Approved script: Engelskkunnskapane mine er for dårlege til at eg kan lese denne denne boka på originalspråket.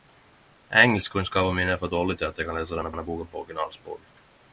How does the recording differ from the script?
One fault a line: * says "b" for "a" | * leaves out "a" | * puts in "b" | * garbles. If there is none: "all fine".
all fine